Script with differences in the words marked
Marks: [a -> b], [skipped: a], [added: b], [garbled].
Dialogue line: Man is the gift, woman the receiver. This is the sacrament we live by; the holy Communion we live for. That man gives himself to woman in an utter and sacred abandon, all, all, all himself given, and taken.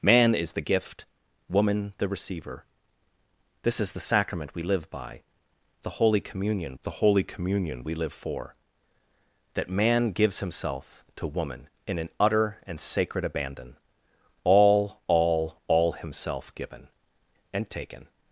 Man is the gift, woman the receiver. This is the sacrament we live by; the holy Communion [added: the holy Communion] we live for. That man gives himself to woman in an utter and sacred abandon, all, all, all himself given, and taken.